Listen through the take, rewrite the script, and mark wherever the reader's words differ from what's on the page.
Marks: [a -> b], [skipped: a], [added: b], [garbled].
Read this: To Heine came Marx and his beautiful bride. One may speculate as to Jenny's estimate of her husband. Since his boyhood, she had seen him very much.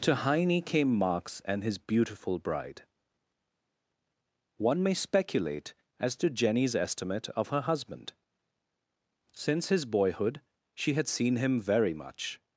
To Heine came Marx and his beautiful bride. One may speculate as to Jenny's estimate of her husband. Since his boyhood, she had seen him very much.